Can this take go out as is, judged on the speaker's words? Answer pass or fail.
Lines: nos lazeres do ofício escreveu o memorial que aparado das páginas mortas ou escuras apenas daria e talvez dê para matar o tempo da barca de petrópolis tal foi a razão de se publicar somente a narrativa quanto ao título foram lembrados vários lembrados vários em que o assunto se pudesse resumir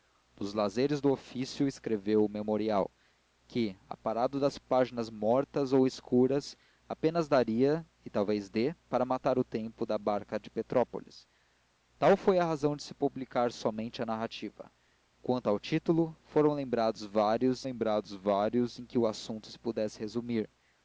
pass